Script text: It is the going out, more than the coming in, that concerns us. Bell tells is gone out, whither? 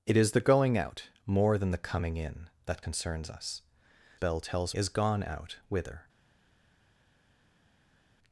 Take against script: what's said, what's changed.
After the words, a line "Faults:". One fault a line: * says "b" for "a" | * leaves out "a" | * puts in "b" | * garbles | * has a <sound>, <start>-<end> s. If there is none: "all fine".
It is the going out, more than the coming in, that concerns us. Bell tells is gone out, whither?
Faults:
all fine